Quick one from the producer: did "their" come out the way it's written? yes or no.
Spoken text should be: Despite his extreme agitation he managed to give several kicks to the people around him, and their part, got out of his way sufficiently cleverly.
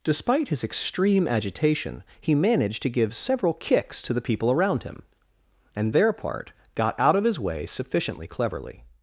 yes